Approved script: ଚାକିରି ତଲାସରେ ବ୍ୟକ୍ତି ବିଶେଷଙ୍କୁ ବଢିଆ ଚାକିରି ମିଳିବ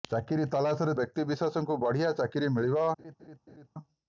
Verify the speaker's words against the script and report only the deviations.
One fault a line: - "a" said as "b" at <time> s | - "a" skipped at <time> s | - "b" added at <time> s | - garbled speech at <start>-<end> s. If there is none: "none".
none